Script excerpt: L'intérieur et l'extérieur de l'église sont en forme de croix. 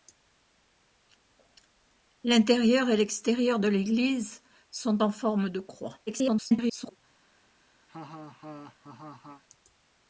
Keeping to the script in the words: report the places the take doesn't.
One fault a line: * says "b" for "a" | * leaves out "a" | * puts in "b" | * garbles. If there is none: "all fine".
* garbles